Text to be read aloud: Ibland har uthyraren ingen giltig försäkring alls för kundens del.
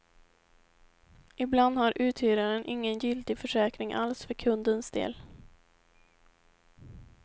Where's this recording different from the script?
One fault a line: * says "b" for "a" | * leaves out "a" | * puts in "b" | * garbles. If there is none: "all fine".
all fine